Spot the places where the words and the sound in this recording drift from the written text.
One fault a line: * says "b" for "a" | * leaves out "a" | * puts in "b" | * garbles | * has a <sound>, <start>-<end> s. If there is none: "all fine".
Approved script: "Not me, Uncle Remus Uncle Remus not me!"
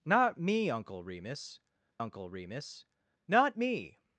all fine